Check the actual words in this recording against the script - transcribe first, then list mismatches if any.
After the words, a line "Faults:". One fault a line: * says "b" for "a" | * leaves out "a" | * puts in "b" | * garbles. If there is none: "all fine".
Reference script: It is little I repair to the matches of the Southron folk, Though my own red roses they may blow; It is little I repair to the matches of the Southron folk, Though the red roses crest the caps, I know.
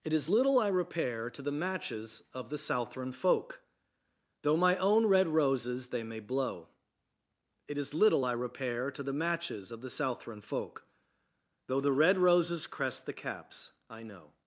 It is little I repair to the matches of the Southron folk, Though my own red roses they may blow; It is little I repair to the matches of the Southron folk, Though the red roses crest the caps, I know.
Faults:
all fine